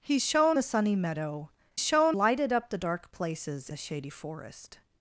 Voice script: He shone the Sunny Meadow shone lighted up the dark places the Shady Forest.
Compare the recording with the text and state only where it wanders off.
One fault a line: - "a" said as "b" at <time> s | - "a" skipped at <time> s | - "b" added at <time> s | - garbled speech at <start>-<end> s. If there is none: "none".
none